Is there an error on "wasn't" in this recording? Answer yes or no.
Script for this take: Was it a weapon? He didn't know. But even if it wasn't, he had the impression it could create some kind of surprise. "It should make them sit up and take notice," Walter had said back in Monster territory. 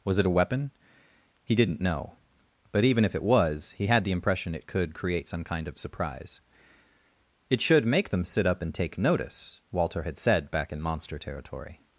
yes